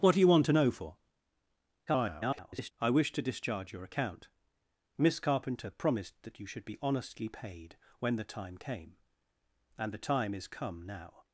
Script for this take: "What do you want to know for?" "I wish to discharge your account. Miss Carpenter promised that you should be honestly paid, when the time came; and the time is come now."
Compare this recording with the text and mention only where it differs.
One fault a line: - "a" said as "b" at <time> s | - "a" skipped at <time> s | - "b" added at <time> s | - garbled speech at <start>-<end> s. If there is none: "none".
- garbled speech at 1.9-2.7 s